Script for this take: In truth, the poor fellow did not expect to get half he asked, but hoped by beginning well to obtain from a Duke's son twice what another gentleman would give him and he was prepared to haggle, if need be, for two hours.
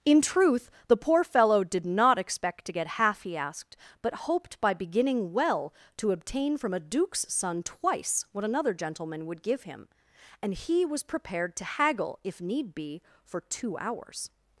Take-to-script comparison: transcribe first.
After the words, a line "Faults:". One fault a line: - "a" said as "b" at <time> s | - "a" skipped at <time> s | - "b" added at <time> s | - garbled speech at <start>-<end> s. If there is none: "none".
In truth, the poor fellow did not expect to get half he asked, but hoped by beginning well to obtain from a Duke's son twice what another gentleman would give him and he was prepared to haggle, if need be, for two hours.
Faults:
none